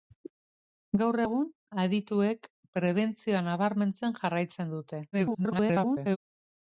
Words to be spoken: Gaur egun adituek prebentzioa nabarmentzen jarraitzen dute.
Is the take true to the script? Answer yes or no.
no